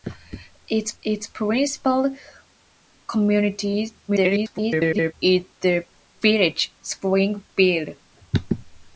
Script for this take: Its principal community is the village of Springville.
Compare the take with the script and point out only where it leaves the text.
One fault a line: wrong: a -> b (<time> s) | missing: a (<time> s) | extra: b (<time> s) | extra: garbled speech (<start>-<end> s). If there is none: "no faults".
extra: its (1.0 s)
extra: garbled speech (4.1-5.1 s)
missing: of (6.7 s)